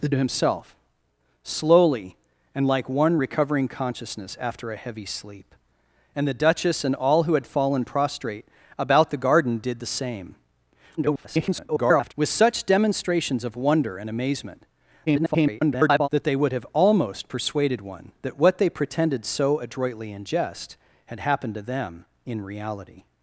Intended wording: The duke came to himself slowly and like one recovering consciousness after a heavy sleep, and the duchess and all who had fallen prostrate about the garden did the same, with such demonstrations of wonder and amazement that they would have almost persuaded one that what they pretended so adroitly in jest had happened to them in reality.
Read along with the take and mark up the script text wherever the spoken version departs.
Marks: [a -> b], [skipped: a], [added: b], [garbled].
The [skipped: duke came] to himself slowly and like one recovering consciousness after a heavy sleep, and the duchess and all who had fallen prostrate about the garden did the same, [garbled] with such demonstrations of wonder and amazement [garbled] that they would have almost persuaded one that what they pretended so adroitly in jest had happened to them in reality.